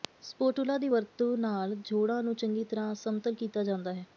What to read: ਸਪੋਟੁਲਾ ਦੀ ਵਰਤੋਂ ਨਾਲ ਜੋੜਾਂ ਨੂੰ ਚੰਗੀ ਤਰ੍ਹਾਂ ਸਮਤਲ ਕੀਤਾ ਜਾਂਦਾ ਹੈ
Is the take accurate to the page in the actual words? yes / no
yes